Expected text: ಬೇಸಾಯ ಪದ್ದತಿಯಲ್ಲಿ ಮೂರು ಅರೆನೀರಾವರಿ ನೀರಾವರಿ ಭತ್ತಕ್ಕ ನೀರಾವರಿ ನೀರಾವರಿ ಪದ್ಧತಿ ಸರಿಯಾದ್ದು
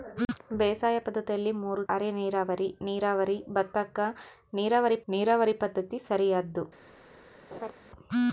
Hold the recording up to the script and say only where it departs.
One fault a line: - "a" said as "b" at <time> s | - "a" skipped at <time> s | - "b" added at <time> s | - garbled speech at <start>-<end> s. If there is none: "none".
none